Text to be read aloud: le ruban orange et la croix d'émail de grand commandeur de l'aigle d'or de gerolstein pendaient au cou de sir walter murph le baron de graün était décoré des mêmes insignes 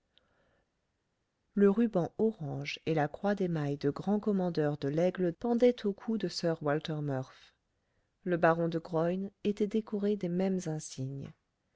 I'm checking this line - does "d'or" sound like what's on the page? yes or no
no